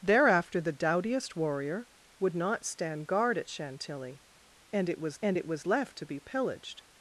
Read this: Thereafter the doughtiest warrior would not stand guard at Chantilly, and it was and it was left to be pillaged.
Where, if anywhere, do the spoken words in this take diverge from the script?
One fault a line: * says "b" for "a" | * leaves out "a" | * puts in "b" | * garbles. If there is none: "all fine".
all fine